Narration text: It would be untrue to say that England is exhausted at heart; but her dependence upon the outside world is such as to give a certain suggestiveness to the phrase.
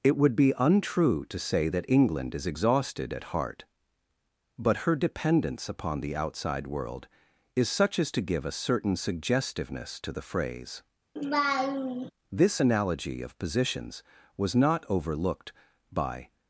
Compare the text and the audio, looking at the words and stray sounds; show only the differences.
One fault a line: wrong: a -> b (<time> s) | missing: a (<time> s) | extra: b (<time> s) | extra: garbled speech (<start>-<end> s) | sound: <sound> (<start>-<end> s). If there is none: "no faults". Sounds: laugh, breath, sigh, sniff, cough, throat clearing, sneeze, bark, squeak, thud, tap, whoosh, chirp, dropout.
sound: laugh (11.2-12.1 s)
extra: This analogy of positions was not overlooked by (12.3 s)